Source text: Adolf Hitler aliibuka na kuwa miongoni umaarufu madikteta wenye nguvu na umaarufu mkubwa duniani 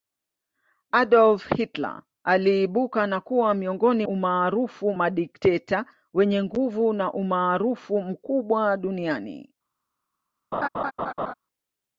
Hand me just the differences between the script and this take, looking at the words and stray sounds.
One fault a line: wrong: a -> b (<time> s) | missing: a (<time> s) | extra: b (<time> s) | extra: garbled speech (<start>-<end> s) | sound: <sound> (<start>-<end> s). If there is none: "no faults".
sound: laugh (10.5-11.3 s)